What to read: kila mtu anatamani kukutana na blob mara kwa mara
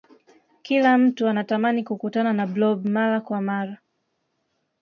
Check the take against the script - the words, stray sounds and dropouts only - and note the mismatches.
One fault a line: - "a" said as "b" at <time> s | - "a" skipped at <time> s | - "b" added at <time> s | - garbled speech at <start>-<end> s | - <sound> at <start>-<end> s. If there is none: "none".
none